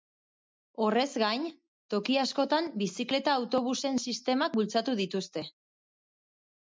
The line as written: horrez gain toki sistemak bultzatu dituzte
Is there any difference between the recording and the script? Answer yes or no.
yes